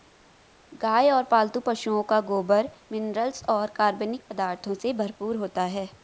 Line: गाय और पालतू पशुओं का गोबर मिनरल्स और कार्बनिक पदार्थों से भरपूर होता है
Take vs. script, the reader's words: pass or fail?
pass